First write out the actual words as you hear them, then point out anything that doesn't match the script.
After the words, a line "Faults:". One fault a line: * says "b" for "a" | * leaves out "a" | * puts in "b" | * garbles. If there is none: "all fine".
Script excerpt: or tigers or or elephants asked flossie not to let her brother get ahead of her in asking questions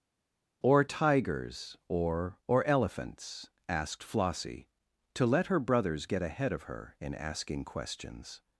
or tigers or or elephants asked flossie to let her brothers get ahead of her in asking questions
Faults:
* leaves out "not"
* says "brothers" for "brother"